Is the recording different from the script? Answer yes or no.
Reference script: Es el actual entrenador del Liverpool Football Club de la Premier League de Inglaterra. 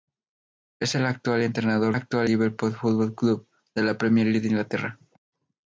yes